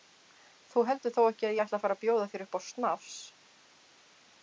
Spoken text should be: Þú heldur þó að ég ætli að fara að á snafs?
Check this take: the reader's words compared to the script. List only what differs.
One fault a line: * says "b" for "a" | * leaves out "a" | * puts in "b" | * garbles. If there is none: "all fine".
* puts in "ekki"
* puts in "bjóða þér upp"